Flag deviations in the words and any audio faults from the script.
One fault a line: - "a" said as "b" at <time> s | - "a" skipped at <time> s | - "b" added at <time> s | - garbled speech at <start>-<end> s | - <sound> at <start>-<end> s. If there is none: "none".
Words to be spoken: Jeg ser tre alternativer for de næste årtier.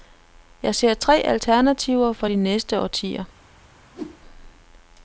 - whoosh at 3.9-4.2 s